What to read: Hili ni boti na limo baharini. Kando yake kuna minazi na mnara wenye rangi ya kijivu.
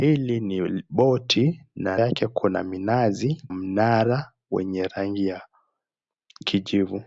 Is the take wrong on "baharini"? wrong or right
wrong